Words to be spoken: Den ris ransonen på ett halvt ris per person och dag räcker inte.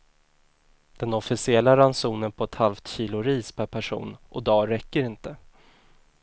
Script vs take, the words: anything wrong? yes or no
yes